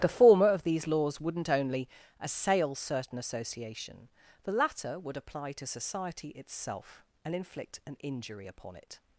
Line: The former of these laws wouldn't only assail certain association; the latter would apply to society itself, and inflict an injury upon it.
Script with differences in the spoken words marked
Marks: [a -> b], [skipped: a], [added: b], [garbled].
The former of these laws wouldn't only assail certain association; the latter would apply to society itself, and inflict an injury upon it.